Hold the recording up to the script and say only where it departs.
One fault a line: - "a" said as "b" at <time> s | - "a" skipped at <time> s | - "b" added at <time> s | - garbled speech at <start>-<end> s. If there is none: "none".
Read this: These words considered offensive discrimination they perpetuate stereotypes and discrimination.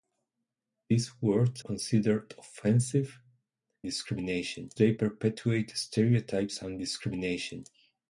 none